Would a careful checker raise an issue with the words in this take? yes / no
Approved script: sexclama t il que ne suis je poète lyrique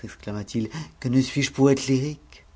no